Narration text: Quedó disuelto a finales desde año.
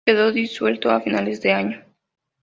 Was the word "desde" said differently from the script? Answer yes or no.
yes